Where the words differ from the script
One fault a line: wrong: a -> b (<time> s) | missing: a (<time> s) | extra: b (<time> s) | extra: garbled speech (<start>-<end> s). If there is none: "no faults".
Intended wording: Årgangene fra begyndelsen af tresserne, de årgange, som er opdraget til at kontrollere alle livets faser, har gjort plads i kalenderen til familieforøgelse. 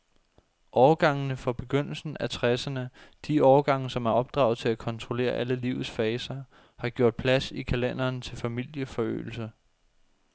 no faults